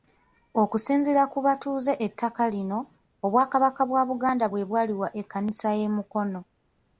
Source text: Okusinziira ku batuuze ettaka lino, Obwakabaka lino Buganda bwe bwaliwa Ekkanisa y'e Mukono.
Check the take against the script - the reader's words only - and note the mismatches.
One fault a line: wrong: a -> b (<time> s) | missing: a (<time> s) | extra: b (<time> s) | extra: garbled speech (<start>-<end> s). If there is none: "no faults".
wrong: lino -> bwa (3.9 s)